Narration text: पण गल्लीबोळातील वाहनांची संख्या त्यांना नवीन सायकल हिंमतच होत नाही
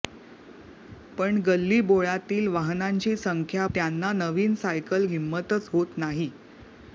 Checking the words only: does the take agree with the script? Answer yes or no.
yes